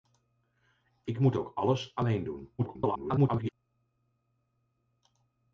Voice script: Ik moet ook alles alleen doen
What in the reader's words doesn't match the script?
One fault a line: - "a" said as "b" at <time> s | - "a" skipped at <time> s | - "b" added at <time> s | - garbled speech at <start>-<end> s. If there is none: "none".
- garbled speech at 2.6-3.5 s